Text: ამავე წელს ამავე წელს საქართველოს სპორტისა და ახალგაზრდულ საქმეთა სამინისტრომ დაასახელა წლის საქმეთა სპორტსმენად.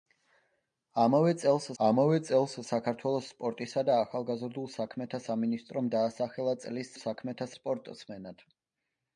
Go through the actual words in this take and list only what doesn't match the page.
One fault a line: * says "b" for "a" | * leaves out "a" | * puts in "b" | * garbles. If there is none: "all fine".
all fine